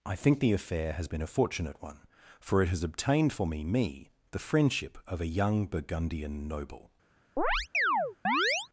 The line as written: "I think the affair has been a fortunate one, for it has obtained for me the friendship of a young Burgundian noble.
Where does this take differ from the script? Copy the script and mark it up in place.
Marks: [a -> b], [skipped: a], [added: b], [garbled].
"I think the affair has been a fortunate one, for it has obtained for me [added: me] the friendship of a young Burgundian noble.